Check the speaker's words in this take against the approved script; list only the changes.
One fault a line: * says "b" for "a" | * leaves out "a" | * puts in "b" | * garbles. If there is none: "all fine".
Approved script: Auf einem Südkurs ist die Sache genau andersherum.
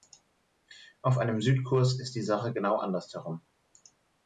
all fine